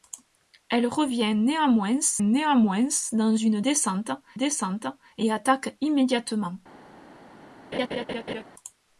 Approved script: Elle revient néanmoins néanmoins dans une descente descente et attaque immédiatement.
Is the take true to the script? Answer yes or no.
yes